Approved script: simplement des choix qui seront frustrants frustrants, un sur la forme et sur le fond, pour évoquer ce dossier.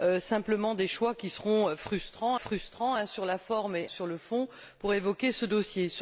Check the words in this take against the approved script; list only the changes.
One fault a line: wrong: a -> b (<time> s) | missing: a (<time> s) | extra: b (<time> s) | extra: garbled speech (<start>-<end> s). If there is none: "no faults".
no faults